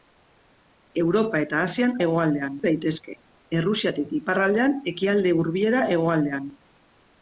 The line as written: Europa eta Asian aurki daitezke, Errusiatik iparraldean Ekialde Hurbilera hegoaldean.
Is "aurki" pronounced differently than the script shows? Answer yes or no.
yes